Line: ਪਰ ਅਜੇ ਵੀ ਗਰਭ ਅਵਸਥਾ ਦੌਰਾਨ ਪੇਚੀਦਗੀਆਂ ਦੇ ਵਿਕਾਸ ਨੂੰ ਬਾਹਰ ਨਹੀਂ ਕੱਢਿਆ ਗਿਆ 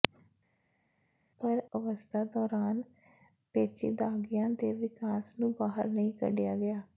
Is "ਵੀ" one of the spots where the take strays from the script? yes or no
yes